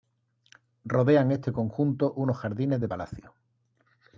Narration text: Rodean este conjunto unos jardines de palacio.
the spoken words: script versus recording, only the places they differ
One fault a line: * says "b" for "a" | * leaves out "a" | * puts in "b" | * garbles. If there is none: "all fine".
all fine